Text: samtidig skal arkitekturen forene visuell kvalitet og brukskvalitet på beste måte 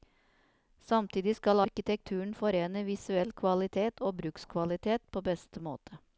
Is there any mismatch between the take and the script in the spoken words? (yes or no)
no